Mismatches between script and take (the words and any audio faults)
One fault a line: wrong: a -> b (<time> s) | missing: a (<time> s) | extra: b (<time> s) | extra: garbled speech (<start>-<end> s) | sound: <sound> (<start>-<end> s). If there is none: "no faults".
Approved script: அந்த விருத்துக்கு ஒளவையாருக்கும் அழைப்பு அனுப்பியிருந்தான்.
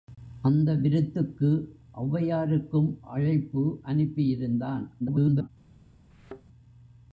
extra: garbled speech (5.0-5.5 s)
sound: thud (6.1-6.4 s)